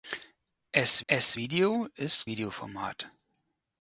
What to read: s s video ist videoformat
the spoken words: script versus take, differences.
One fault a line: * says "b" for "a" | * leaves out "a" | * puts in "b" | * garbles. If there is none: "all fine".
all fine